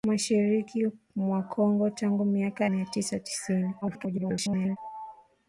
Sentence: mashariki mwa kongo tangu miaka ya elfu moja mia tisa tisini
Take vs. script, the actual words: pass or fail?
fail